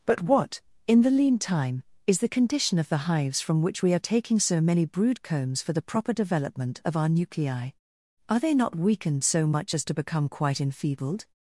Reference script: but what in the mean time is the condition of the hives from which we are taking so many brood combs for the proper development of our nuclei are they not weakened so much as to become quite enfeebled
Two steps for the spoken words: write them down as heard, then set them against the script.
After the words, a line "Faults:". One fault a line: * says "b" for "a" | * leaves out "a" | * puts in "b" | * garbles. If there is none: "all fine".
but what in the lean time is the condition of the hives from which we are taking so many brood combs for the proper development of our nuclei are they not weakened so much as to become quite enfeebled
Faults:
* says "lean" for "mean"